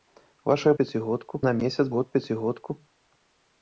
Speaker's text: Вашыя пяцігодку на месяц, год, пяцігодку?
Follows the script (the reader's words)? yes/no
yes